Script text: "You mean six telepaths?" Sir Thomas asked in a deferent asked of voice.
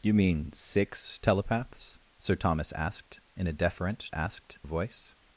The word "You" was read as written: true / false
true